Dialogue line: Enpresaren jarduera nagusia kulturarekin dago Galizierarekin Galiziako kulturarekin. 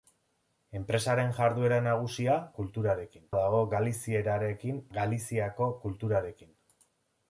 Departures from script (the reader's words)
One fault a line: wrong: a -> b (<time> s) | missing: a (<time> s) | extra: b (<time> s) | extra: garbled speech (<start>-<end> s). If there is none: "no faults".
no faults